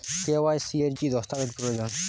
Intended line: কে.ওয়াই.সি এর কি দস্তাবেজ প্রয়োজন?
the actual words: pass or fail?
pass